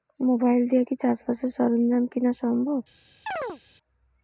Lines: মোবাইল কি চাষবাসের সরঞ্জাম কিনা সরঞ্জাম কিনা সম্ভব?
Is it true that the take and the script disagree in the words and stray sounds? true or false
true